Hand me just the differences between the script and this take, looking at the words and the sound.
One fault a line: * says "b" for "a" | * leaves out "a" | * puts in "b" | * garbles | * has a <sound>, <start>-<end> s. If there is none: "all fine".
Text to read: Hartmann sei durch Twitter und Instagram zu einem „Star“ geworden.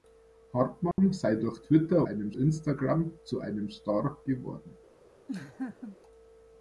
* has a dropout, 0.9-1.0 s
* says "einem" for "und"
* has a laugh, 5.3-6.0 s